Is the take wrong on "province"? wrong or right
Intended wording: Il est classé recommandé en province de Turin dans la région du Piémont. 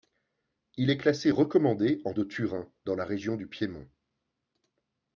wrong